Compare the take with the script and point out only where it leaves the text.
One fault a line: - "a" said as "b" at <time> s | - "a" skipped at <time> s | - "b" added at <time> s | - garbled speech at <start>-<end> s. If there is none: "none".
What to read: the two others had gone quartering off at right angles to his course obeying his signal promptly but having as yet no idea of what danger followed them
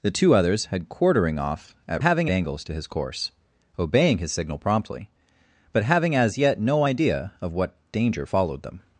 - "gone" skipped at 0.8 s
- "right" said as "having" at 2.0 s